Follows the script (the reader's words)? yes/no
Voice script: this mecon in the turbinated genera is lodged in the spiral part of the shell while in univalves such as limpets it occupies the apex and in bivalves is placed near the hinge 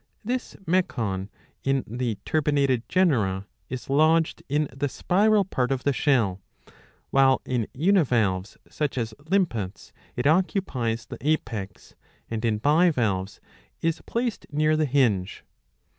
yes